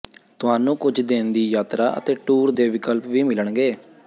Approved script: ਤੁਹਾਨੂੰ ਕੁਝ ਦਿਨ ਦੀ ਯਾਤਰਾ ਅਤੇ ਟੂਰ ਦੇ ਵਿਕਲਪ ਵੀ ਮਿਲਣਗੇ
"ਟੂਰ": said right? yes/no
yes